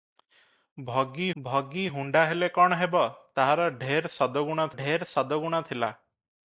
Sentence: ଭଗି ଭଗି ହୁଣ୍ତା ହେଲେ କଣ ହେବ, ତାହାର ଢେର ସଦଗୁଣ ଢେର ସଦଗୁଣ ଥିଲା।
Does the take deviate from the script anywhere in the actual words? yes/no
no